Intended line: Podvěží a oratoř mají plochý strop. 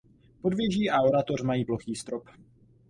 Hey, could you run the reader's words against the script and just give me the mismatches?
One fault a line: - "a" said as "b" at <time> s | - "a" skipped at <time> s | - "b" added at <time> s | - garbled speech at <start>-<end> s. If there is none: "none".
none